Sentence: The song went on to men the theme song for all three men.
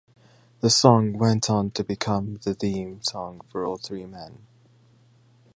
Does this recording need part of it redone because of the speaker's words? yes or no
yes